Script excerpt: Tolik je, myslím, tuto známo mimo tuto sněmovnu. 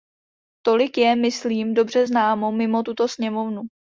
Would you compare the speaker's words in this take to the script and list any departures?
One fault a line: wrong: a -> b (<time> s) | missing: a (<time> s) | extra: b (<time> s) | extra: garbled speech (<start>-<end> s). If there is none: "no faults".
wrong: tuto -> dobře (1.7 s)